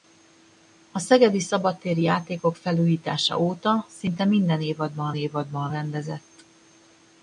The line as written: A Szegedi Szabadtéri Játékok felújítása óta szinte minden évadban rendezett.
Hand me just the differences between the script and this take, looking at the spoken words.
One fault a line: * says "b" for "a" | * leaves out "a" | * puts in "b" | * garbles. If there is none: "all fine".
* puts in "évadban"